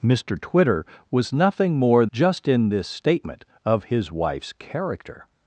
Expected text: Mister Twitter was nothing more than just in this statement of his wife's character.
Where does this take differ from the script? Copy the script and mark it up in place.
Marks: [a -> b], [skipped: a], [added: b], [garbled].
Mister Twitter was nothing more [skipped: than] just in this statement of his wife's character.